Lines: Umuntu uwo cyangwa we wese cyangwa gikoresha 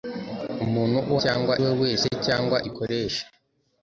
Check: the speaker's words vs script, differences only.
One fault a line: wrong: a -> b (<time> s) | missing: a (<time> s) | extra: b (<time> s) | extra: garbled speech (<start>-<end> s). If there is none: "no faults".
no faults